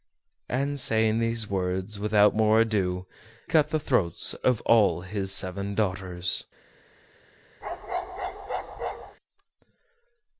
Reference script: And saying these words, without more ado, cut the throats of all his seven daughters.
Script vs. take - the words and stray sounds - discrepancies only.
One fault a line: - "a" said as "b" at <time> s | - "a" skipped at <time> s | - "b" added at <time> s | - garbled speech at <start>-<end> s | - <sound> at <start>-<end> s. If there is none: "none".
- bark at 7.6-9.2 s